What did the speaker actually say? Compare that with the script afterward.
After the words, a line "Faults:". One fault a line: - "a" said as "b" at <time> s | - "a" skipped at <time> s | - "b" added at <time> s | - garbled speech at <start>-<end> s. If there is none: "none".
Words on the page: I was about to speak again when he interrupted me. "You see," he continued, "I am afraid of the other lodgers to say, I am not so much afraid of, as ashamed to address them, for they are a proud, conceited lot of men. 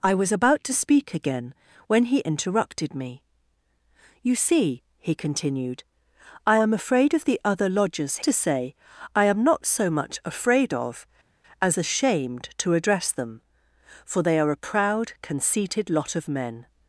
I was about to speak again when he interrupted me. "You see," he continued, "I am afraid of the other lodgers to say, I am not so much afraid of, as ashamed to address them, for they are a proud, conceited lot of men.
Faults:
none